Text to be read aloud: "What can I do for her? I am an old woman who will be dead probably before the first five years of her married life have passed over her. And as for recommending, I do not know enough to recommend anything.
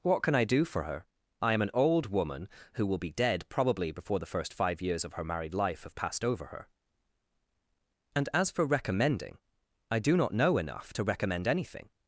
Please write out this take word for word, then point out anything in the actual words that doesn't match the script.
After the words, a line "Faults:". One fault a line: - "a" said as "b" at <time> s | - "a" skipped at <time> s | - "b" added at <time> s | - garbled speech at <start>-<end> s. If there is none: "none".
"What can I do for her? I am an old woman who will be dead probably before the first five years of her married life have passed over her. And as for recommending, I do not know enough to recommend anything.
Faults:
none